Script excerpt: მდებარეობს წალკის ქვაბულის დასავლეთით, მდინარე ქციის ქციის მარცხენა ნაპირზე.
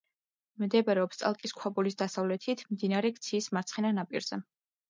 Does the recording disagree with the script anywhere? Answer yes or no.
yes